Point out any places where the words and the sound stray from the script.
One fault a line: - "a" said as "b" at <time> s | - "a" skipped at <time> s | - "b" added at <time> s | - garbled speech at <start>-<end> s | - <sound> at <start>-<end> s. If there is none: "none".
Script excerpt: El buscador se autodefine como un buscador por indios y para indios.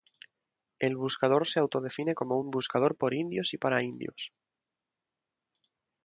none